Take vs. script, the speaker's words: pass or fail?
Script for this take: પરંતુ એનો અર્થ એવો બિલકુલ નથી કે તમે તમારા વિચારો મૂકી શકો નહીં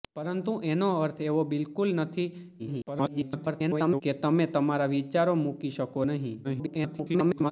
fail